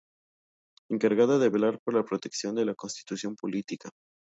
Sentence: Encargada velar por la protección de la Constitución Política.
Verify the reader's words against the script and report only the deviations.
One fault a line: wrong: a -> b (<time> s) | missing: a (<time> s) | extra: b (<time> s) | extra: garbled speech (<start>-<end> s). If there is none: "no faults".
extra: de (1.4 s)